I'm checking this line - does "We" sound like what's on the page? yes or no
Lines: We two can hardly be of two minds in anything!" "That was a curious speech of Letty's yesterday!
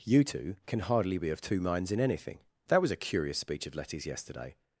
no